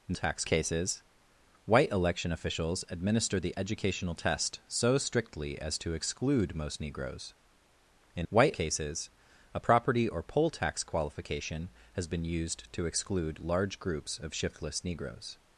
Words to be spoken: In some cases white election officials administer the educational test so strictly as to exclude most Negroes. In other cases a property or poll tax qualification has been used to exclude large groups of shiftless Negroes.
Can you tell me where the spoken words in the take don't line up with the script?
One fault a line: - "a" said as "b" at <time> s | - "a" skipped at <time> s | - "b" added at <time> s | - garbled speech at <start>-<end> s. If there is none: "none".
- "some" said as "tax" at 0.1 s
- "other" said as "white" at 8.3 s